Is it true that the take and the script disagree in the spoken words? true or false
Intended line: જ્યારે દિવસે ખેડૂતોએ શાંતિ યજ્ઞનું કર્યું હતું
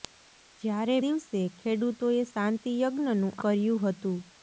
false